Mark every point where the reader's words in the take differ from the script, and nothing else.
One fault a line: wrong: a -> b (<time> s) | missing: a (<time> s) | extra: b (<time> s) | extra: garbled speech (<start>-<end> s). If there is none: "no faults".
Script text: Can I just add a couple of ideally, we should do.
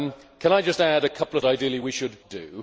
no faults